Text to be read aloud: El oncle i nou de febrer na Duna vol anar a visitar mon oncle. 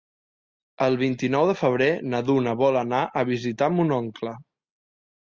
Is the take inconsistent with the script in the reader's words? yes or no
yes